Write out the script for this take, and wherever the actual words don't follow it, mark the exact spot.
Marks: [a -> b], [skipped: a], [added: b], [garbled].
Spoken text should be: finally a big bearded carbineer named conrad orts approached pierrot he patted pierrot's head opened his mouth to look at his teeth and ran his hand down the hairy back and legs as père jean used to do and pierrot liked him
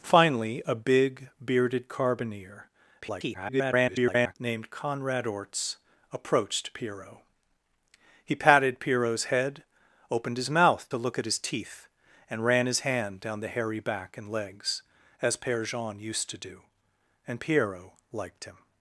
finally a big bearded carbineer [garbled] named conrad orts approached pierrot he patted pierrot's head opened his mouth to look at his teeth and ran his hand down the hairy back and legs as père jean used to do and pierrot liked him